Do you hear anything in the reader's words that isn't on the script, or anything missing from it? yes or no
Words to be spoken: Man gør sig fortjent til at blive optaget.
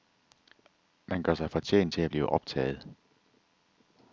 no